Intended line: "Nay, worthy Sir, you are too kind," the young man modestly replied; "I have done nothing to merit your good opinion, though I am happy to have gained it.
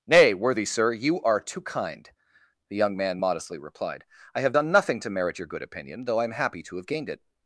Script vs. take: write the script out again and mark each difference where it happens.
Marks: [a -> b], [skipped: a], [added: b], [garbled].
"Nay, worthy Sir, you are too kind," the young man modestly replied; "I have done nothing to merit your good opinion, though I am happy to have gained it.